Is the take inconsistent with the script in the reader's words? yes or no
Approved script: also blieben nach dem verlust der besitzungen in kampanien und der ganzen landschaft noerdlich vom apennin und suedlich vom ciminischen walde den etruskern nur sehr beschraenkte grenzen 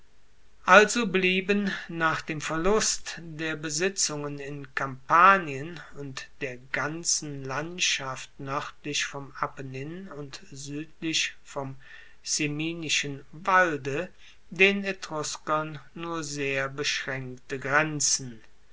no